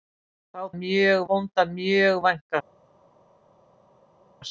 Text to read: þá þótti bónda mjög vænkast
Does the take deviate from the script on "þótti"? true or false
true